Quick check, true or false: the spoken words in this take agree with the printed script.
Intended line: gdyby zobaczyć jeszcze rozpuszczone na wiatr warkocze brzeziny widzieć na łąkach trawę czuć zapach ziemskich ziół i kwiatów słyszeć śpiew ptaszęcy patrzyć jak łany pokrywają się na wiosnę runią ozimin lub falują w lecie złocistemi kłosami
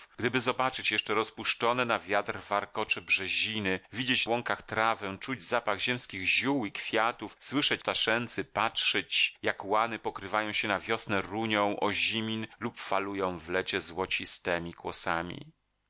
false